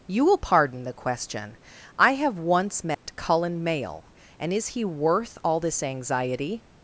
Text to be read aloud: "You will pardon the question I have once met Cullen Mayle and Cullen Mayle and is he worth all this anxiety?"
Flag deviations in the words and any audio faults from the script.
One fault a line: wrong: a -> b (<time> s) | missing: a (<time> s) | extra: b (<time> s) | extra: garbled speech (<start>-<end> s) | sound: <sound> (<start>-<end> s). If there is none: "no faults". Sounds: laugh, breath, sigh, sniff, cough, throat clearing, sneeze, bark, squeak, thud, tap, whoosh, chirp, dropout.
sound: dropout (2.9-3.0 s)
missing: Cullen Mayle and (4.5 s)